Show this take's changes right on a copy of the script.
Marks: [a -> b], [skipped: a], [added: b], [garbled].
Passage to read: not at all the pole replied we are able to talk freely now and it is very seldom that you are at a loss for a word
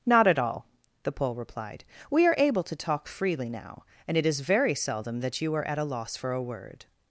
not at all the pole replied we are able to talk freely now and it is very seldom that you are at a loss for a word